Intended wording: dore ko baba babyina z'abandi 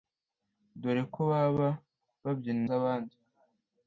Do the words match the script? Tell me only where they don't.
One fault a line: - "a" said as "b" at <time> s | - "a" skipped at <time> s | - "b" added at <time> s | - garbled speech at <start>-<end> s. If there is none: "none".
none